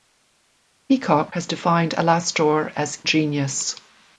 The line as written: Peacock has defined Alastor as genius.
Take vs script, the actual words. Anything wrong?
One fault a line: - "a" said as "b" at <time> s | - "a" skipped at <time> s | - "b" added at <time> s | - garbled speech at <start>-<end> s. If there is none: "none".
none